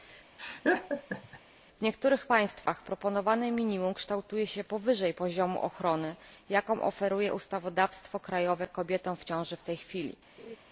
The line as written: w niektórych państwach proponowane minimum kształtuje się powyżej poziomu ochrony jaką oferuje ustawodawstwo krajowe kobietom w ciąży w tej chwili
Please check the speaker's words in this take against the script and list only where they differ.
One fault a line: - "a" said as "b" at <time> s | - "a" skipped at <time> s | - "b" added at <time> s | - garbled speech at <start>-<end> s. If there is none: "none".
none